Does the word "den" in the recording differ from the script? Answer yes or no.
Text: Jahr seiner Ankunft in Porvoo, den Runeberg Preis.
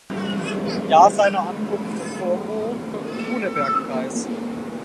yes